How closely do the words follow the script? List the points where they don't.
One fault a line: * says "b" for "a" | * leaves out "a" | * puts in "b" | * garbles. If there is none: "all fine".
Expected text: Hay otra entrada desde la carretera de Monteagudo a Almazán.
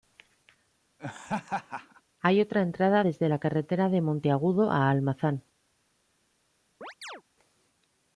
all fine